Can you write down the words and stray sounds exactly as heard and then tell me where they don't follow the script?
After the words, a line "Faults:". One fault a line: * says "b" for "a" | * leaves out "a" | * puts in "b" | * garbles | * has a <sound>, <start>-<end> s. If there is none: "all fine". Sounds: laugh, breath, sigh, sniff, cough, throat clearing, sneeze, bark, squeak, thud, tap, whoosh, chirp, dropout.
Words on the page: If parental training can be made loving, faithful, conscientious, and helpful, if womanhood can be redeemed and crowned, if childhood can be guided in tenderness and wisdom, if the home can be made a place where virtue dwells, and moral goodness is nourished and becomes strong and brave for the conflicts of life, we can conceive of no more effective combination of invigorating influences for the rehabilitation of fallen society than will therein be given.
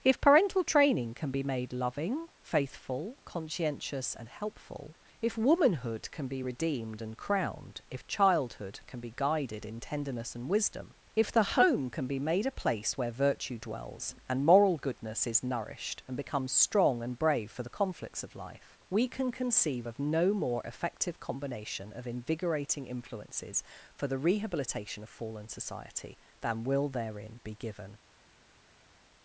If parental training can be made loving, faithful, conscientious, and helpful, if womanhood can be redeemed and crowned, if childhood can be guided in tenderness and wisdom, if the home can be made a place where virtue dwells, and moral goodness is nourished and becomes strong and brave for the conflicts of life, we can conceive of no more effective combination of invigorating influences for the rehabilitation of fallen society than will therein be given.
Faults:
all fine